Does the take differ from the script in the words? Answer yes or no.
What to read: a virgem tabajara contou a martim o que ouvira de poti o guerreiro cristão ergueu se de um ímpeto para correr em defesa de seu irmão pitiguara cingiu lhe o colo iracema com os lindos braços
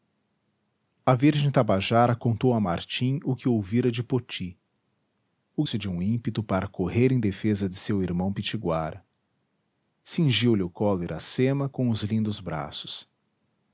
yes